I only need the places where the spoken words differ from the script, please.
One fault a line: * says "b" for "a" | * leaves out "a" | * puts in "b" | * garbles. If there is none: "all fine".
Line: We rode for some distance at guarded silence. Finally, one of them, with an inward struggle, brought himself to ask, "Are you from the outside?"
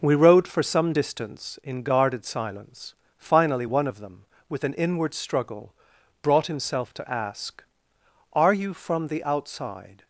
* says "in" for "at"